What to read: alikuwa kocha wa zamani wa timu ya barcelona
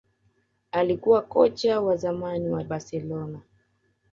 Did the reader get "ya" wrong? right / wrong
wrong